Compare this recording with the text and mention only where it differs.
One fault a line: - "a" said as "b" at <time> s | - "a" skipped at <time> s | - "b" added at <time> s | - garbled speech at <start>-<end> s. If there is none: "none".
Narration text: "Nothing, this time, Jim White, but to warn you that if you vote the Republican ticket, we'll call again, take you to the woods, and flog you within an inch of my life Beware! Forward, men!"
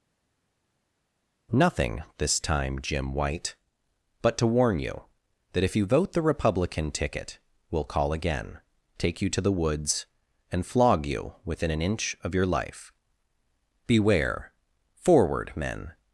- "my" said as "your" at 12.3 s